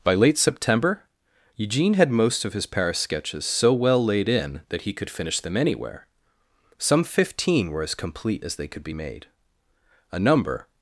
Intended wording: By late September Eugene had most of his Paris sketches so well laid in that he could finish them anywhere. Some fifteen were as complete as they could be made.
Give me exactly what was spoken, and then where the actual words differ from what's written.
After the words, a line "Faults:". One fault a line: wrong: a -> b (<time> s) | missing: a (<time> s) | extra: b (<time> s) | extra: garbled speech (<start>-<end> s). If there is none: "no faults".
By late September Eugene had most of his Paris sketches so well laid in that he could finish them anywhere. Some fifteen were as complete as they could be made. A number
Faults:
extra: A number (10.1 s)